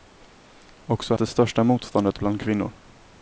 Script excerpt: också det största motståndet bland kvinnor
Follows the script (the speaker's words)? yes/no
yes